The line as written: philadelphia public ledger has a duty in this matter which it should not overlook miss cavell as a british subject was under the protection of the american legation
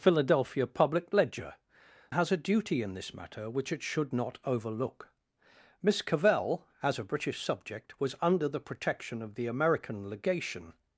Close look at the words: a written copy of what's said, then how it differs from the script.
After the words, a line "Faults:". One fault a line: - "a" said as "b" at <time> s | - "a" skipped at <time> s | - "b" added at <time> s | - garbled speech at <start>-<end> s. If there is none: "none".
philadelphia public ledger has a duty in this matter which it should not overlook miss cavell as a british subject was under the protection of the american legation
Faults:
none